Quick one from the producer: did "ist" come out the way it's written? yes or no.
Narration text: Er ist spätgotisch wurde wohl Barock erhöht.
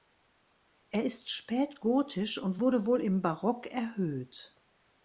yes